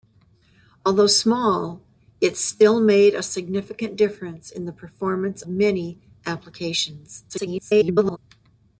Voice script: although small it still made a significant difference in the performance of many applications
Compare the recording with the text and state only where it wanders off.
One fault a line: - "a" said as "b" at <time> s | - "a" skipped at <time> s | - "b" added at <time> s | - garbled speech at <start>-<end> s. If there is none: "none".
- "of" skipped at 5.4 s
- garbled speech at 7.3-8.2 s